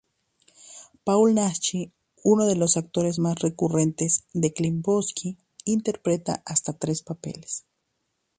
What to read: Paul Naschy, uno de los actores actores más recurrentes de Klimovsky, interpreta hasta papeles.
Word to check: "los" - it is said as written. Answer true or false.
true